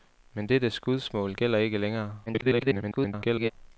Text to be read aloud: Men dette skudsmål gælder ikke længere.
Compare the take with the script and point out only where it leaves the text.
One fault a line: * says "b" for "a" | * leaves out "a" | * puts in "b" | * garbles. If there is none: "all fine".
* garbles